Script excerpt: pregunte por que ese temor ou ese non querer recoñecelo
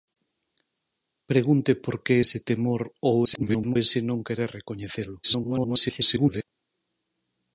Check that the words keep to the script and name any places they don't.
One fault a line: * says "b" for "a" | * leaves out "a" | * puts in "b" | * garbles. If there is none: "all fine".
* garbles
* garbles